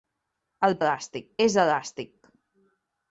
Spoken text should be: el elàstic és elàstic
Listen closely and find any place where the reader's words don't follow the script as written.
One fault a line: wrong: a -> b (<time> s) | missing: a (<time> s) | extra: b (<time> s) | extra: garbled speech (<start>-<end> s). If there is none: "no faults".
no faults